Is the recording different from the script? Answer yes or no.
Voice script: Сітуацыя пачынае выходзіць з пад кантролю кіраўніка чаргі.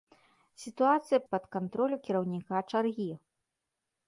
yes